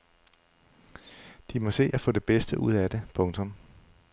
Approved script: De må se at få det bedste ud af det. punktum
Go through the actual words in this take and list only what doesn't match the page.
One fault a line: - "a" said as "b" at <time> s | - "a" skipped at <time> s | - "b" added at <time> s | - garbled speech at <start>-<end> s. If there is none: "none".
none